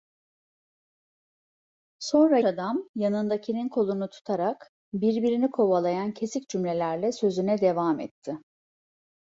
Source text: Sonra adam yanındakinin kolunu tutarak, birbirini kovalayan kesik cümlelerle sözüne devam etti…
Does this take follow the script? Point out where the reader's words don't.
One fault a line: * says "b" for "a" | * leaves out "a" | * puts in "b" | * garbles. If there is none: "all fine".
all fine